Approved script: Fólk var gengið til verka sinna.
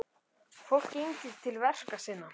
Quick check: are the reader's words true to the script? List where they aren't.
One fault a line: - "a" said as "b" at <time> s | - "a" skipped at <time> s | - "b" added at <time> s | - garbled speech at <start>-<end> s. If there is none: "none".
- "var" skipped at 0.9 s